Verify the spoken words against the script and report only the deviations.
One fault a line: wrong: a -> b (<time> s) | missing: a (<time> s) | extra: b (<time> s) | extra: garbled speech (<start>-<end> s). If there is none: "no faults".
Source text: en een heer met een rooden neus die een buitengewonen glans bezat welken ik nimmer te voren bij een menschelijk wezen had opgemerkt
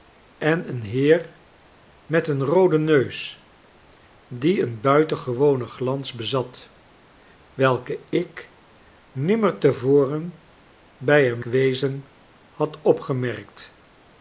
missing: menschelijk (11.4 s)